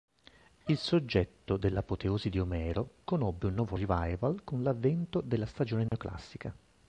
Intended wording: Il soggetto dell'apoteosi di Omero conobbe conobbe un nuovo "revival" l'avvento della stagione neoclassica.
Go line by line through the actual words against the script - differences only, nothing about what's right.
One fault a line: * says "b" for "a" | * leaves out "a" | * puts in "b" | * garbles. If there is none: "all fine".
* leaves out "conobbe"
* puts in "con"